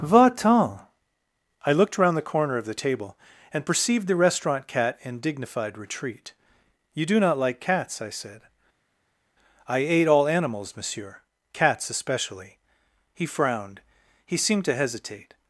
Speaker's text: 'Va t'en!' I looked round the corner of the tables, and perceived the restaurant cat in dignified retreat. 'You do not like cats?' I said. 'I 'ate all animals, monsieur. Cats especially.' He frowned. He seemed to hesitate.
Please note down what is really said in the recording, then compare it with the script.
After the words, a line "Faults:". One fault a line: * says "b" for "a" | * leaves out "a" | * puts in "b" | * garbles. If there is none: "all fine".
'Va t'en!' I looked round the corner of the table, and perceived the restaurant cat in dignified retreat. 'You do not like cats?' I said. 'I 'ate all animals, monsieur. Cats especially.' He frowned. He seemed to hesitate.
Faults:
* says "table" for "tables"